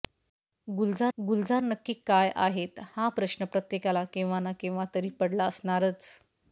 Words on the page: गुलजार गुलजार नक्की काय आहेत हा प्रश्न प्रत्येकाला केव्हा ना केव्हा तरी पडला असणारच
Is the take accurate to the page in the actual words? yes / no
yes